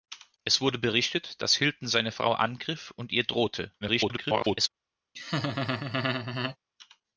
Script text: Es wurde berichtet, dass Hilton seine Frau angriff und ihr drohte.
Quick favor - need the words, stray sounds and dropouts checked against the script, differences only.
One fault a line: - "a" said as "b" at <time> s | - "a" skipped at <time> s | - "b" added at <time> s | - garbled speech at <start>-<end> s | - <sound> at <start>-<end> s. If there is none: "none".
- garbled speech at 3.8-4.7 s
- laugh at 5.1-6.6 s